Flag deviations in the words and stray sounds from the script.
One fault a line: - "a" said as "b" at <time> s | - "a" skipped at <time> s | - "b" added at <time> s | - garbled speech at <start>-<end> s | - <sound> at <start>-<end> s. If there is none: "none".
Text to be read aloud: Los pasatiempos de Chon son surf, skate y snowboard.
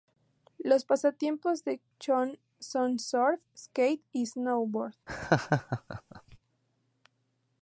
- laugh at 5.1-6.4 s